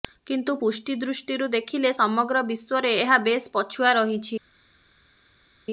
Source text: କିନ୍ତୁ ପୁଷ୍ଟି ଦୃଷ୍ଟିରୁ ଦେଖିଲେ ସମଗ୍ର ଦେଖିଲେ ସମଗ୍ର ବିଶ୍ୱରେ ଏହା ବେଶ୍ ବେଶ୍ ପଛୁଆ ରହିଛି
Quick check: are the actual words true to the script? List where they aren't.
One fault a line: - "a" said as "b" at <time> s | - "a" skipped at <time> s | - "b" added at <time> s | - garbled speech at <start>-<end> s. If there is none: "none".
- "ଦେଖିଲେ ସମଗ୍ର" skipped at 2.4 s
- "ବେଶ୍" skipped at 3.5 s